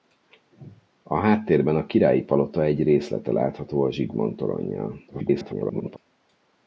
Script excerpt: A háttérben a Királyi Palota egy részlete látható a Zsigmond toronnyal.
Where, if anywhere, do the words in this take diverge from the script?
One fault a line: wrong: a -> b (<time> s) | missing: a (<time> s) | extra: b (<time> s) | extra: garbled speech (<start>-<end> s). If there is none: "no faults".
extra: garbled speech (5.1-6.0 s)